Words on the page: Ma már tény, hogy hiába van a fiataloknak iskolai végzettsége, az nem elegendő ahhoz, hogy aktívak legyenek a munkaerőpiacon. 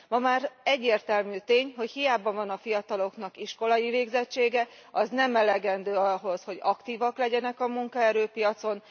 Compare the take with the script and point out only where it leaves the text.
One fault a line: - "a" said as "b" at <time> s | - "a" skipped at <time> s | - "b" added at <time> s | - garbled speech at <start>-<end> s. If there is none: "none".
- "egyértelmű" added at 0.6 s